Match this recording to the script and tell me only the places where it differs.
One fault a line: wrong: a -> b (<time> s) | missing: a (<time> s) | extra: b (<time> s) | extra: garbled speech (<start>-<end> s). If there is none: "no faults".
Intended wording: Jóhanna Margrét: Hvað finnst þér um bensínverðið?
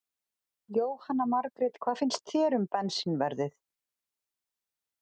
no faults